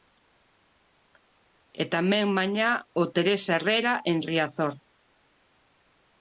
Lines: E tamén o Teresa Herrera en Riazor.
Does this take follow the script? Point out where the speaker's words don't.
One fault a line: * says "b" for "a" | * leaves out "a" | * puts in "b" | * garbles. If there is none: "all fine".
* puts in "mañá"